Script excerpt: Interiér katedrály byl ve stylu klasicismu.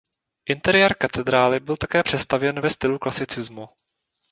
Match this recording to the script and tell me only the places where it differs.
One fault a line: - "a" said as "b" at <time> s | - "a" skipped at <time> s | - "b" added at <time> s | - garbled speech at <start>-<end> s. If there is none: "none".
- "také přestavěn" added at 1.8 s